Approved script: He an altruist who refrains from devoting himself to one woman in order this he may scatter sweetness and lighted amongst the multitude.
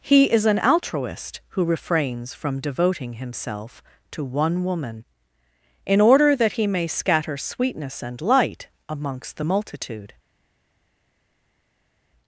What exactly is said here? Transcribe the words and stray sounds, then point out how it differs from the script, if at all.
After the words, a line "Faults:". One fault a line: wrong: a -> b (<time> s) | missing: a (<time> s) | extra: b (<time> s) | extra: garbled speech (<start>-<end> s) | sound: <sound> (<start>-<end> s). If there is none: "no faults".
He is an altruist who refrains from devoting himself to one woman in order that he may scatter sweetness and light amongst the multitude.
Faults:
extra: is (0.3 s)
wrong: this -> that (6.3 s)
wrong: lighted -> light (8.2 s)